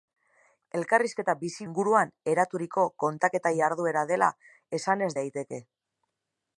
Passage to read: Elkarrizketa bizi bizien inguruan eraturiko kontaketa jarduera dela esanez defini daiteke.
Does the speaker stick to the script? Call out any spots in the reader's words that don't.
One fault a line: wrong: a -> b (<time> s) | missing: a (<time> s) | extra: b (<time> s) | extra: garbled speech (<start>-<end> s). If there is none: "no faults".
missing: bizien (1.7 s)
missing: defini (5.1 s)